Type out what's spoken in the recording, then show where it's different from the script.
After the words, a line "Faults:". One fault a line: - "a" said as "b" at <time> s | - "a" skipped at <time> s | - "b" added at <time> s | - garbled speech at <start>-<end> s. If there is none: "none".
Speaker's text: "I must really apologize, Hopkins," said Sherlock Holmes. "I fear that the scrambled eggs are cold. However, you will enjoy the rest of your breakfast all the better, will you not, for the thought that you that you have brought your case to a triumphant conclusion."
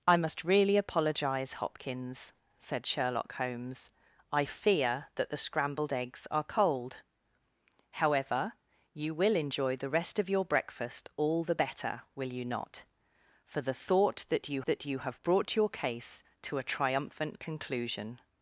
"I must really apologize, Hopkins," said Sherlock Holmes. "I fear that the scrambled eggs are cold. However, you will enjoy the rest of your breakfast all the better, will you not, for the thought that you that you have brought your case to a triumphant conclusion."
Faults:
none